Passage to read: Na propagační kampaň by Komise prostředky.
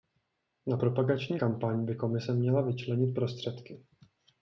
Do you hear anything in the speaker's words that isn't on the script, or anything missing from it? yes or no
yes